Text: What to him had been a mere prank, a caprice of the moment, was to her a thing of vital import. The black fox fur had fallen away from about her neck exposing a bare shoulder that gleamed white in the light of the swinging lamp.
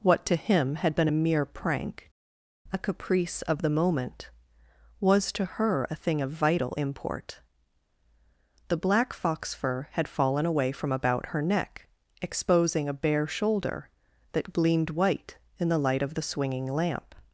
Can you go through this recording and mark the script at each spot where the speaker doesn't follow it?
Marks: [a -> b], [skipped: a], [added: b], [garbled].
What to him had been a mere prank, a caprice of the moment, was to her a thing of vital import. The black fox fur had fallen away from about her neck exposing a bare shoulder that gleamed white in the light of the swinging lamp.